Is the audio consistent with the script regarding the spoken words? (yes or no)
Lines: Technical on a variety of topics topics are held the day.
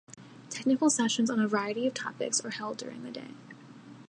no